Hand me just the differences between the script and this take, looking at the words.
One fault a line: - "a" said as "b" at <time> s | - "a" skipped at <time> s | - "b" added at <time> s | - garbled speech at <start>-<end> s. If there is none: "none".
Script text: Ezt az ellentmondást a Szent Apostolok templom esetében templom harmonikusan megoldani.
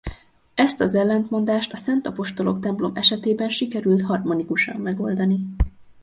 - "templom" said as "sikerült" at 3.5 s